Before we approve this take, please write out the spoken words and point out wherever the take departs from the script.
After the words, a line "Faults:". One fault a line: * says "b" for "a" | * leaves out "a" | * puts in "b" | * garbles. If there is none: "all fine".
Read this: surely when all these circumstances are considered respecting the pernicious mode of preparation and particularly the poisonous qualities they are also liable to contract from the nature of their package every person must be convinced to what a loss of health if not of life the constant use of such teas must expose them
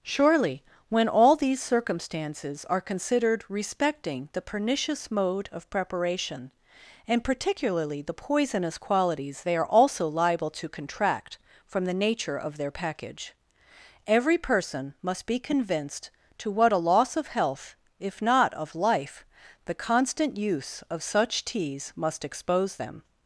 surely when all these circumstances are considered respecting the pernicious mode of preparation and particularly the poisonous qualities they are also liable to contract from the nature of their package every person must be convinced to what a loss of health if not of life the constant use of such teas must expose them
Faults:
all fine